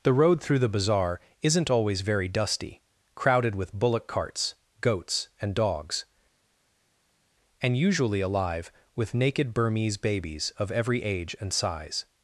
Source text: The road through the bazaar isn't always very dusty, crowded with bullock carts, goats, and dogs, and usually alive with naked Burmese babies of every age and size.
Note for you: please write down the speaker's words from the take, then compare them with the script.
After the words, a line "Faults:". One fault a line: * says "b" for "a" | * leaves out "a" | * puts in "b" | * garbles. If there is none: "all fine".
The road through the bazaar isn't always very dusty, crowded with bullock carts, goats, and dogs, and usually alive with naked Burmese babies of every age and size.
Faults:
all fine